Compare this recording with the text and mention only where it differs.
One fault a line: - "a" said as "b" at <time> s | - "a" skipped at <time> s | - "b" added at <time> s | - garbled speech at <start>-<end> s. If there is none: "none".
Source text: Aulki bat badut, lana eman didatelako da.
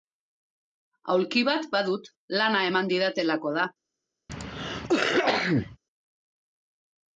none